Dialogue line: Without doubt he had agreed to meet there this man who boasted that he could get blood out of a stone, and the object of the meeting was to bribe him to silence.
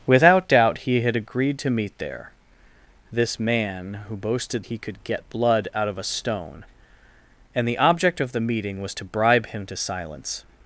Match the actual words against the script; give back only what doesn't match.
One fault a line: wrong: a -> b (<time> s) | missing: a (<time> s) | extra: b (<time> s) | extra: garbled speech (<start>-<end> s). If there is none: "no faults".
missing: that (4.6 s)